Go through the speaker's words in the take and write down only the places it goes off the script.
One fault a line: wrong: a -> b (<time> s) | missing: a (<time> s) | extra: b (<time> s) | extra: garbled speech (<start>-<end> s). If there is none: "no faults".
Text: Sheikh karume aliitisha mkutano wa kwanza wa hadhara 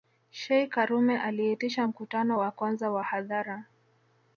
no faults